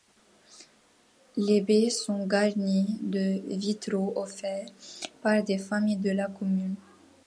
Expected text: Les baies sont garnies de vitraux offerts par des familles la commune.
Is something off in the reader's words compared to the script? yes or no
yes